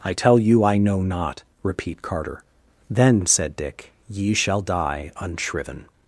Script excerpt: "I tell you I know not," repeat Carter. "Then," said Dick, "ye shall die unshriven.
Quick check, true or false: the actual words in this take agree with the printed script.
true